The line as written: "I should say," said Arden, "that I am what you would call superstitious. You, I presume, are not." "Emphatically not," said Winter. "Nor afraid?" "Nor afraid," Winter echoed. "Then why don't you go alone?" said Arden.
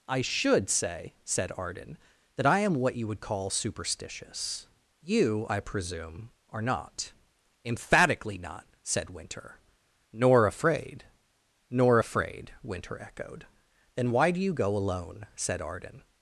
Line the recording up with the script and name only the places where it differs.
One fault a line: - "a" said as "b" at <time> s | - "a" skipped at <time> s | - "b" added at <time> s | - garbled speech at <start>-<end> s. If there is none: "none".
- "don't" said as "do" at 14.3 s